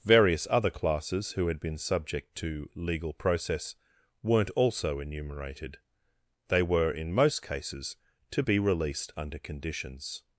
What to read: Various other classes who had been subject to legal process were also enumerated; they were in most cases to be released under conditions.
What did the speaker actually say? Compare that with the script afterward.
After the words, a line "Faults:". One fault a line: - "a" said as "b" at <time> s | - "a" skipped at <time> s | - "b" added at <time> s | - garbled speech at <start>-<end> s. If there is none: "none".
Various other classes who had been subject to legal process weren't also enumerated; they were in most cases to be released under conditions.
Faults:
- "were" said as "weren't" at 4.2 s